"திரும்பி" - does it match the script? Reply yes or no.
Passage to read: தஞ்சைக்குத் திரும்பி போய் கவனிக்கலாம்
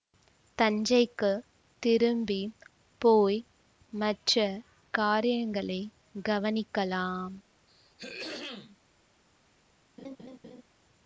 yes